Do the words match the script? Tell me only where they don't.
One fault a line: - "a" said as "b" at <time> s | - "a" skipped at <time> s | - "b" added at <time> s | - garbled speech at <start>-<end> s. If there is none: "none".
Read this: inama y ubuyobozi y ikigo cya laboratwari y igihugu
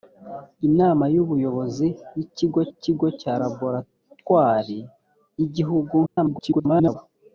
- "ikigo" added at 2.7 s
- garbled speech at 6.1-7.0 s